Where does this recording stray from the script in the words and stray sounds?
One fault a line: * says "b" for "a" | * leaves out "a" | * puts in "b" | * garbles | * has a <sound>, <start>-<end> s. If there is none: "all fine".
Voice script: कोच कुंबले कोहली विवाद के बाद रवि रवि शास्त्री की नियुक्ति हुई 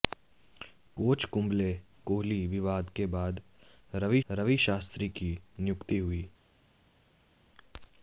all fine